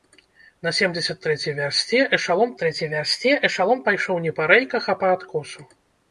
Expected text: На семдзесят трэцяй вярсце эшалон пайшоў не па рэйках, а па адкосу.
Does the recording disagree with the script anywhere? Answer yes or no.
yes